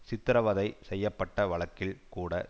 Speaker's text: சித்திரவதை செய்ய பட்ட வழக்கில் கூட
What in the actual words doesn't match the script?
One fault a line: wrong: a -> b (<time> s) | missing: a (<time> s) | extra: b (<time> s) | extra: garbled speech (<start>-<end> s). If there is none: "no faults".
no faults